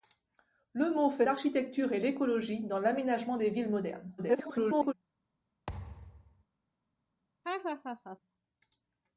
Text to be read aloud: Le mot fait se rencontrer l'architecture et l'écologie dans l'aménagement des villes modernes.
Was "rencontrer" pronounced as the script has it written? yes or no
no